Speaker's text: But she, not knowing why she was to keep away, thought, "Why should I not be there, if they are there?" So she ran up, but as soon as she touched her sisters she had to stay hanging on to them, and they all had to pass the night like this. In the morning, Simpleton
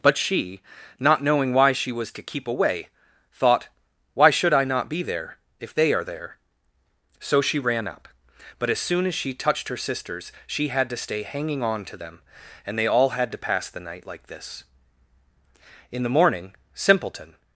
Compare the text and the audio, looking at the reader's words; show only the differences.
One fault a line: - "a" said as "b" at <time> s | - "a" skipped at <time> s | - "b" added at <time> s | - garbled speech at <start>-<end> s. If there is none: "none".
none